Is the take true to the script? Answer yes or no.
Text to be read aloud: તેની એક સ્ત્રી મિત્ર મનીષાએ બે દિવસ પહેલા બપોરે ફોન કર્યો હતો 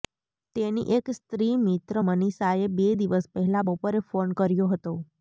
yes